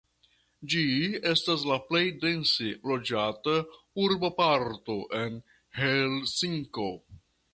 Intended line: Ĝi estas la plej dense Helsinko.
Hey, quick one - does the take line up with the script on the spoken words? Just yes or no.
no